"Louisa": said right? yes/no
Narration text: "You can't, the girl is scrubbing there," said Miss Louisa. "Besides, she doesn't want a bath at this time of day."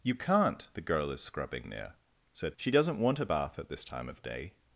no